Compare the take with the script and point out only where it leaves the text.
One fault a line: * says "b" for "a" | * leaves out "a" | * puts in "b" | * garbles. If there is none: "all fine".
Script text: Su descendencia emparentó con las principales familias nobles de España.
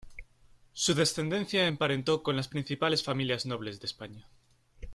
all fine